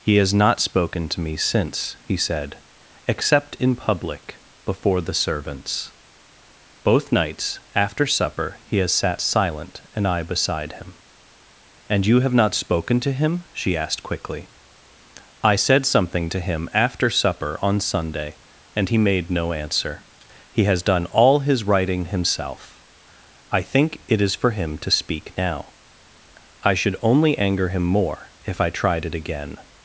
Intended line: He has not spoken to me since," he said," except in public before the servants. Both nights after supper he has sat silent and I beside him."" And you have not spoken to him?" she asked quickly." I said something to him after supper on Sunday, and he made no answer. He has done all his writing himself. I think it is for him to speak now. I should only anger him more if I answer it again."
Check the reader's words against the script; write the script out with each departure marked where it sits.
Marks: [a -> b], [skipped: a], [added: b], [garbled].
He has not spoken to me since," he said," except in public before the servants. Both nights after supper he has sat silent and I beside him."" And you have not spoken to him?" she asked quickly." I said something to him after supper on Sunday, and he made no answer. He has done all his writing himself. I think it is for him to speak now. I should only anger him more if I [answer -> tried] it again."